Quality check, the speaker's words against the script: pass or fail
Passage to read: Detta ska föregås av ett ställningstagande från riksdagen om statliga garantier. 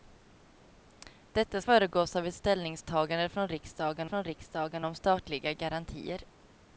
fail